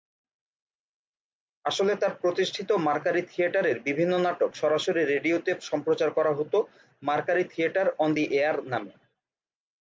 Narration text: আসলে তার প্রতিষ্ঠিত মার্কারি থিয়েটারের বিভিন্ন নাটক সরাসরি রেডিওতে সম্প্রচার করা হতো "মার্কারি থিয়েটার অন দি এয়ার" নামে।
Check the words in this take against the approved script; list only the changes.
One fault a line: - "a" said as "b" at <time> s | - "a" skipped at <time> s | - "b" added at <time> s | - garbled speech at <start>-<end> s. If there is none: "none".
none